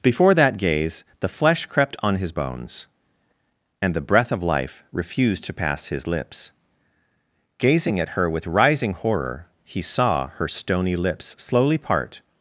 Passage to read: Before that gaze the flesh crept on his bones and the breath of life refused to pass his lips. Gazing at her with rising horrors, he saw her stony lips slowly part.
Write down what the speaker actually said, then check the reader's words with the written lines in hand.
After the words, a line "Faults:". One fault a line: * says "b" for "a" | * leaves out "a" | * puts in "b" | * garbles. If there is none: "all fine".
Before that gaze the flesh crept on his bones and the breath of life refused to pass his lips. Gazing at her with rising horror, he saw her stony lips slowly part.
Faults:
* says "horror" for "horrors"